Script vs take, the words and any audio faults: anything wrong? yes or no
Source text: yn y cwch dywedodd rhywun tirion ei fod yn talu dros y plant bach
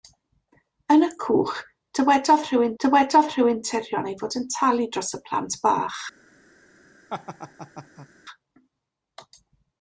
yes